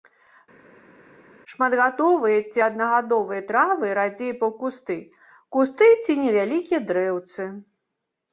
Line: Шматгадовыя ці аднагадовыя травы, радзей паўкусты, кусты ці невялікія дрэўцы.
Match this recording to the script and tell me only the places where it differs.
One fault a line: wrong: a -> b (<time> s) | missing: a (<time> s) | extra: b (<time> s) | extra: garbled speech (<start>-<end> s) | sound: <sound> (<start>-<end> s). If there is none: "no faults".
no faults